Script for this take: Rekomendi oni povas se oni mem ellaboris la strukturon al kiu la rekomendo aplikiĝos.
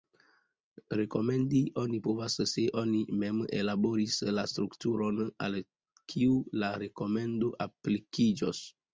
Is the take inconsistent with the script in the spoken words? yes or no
no